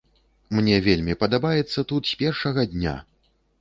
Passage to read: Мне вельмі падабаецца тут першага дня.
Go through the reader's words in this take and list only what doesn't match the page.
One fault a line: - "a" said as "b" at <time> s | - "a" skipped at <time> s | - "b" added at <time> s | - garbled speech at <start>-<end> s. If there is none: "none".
- "з" added at 2.1 s